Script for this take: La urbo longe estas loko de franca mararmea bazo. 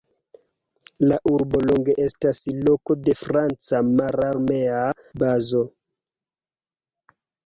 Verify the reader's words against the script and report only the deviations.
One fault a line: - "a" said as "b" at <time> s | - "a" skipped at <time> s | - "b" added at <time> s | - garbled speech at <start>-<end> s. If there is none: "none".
none